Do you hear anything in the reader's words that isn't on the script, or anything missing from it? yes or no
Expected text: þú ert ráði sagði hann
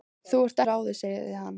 no